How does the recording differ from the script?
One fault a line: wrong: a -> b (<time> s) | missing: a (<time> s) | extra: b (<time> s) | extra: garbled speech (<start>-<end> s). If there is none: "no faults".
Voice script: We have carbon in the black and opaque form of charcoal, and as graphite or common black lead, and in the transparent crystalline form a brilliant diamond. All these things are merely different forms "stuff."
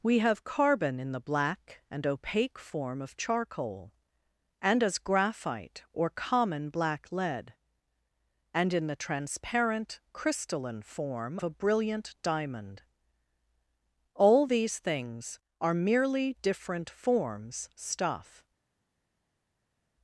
no faults